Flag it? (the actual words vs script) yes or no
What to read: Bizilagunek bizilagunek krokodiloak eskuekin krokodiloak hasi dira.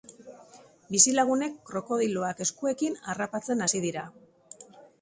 yes